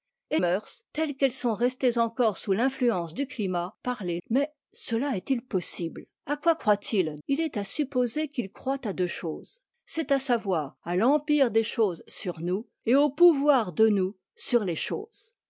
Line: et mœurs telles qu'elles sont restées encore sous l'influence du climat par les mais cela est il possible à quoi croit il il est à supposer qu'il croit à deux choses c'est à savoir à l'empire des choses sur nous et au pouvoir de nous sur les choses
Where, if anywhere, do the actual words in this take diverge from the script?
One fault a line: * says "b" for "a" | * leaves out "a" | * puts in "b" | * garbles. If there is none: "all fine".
all fine